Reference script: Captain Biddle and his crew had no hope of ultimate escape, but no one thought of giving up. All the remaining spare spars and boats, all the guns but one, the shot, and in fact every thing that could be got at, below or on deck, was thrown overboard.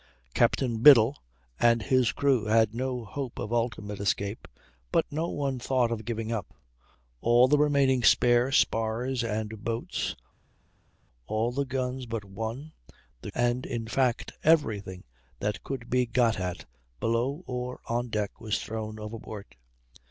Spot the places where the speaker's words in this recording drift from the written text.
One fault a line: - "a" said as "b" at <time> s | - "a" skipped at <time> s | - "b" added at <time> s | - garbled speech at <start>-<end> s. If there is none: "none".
- "shot" skipped at 13.3 s